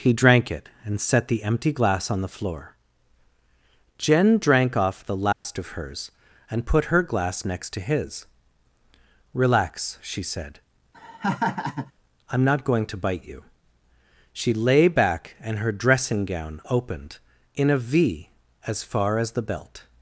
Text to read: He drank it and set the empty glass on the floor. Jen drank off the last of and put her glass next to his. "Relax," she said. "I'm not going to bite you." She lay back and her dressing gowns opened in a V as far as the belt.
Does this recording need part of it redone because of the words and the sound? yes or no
yes